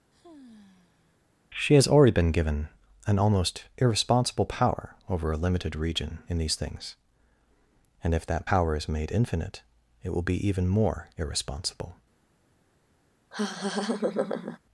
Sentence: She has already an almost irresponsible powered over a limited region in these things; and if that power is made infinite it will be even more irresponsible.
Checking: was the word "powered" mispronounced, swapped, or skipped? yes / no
yes